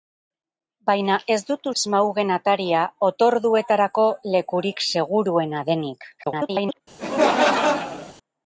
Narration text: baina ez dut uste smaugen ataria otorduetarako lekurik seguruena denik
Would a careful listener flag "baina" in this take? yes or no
no